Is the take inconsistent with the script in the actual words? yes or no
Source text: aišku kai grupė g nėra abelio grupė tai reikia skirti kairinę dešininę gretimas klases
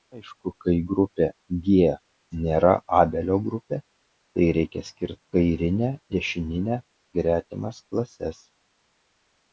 no